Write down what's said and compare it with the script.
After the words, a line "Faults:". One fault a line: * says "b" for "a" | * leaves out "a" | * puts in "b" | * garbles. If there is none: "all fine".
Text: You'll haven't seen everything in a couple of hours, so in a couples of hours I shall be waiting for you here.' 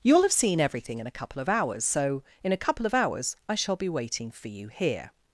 You'll have seen everything in a couple of hours, so in a couple of hours I shall be waiting for you here.'
Faults:
* says "have" for "haven't"
* says "couple" for "couples"